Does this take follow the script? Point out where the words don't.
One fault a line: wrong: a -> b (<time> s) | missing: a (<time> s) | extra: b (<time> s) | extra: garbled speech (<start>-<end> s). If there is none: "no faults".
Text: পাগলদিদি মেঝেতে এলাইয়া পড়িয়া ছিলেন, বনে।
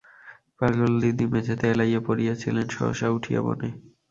extra: সহসা উঠিয়া (2.7 s)